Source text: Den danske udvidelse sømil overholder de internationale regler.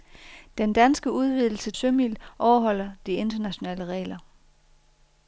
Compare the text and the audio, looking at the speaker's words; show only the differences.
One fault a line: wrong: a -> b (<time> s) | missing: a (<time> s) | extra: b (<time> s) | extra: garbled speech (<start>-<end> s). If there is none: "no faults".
no faults